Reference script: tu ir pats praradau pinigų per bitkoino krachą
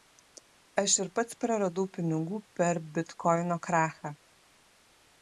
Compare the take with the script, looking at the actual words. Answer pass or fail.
fail